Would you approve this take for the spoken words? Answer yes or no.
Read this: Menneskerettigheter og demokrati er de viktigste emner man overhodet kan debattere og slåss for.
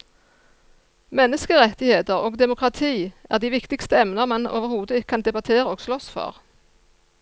yes